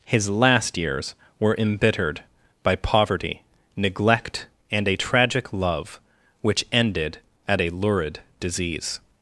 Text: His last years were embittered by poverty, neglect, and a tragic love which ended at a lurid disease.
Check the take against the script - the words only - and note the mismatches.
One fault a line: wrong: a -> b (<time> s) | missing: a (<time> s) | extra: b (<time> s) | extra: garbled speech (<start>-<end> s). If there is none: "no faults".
no faults